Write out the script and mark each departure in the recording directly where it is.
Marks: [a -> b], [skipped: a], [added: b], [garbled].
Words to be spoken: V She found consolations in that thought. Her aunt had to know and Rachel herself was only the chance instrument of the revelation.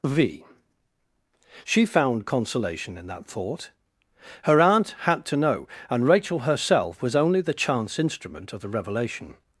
V She found [consolations -> consolation] in that thought. Her aunt had to know and Rachel herself was only the chance instrument of the revelation.